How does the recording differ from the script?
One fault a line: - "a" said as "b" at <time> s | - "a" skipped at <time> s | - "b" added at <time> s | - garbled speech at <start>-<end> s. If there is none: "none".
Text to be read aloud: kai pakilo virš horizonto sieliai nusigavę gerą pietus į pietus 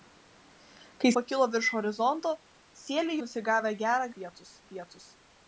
none